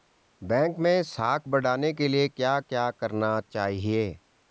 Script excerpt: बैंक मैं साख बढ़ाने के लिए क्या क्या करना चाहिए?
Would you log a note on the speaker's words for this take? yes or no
no